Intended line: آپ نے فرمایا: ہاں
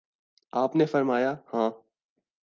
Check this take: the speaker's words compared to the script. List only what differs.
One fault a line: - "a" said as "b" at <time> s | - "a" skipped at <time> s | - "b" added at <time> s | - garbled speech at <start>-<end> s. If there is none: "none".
none